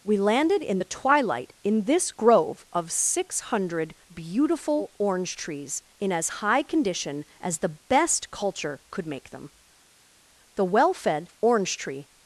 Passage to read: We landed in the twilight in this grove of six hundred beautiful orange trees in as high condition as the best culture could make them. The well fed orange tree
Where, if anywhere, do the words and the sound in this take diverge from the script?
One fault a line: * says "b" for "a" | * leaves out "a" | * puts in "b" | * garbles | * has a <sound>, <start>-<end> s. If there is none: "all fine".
all fine